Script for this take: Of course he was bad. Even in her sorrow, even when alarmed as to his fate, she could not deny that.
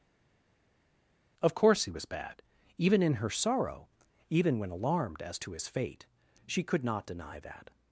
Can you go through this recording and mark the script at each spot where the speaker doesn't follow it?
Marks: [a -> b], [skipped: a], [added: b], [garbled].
Of course he was bad. Even in her sorrow, even when alarmed as to his fate, she could not deny that.